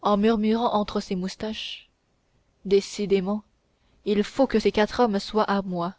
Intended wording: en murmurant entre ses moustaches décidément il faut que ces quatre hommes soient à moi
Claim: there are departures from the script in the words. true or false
false